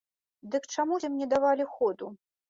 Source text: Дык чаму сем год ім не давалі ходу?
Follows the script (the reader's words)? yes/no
no